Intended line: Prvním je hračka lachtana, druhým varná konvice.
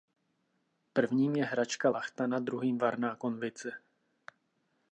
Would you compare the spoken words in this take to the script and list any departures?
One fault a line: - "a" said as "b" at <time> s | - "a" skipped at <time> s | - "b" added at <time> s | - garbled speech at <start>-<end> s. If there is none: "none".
none